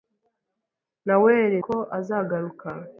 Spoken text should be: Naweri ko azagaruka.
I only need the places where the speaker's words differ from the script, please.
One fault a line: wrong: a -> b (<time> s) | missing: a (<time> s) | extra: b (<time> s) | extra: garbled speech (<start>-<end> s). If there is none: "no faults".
no faults